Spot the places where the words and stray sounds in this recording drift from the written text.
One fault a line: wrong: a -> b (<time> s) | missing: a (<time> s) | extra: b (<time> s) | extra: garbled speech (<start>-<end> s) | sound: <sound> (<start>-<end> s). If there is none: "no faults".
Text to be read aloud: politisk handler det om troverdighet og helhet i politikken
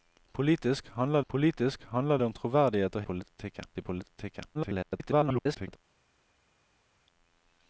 extra: politisk handler (1.3 s)
wrong: helhet -> politikken (3.0 s)
extra: garbled speech (4.5-5.8 s)